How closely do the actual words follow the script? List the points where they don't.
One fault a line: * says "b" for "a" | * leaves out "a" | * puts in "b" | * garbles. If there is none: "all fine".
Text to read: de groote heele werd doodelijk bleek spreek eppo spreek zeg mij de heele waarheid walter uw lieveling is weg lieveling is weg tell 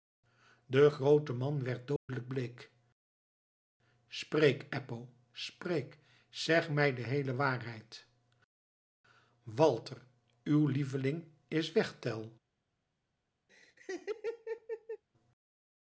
* says "man" for "heele"
* leaves out "lieveling is weg"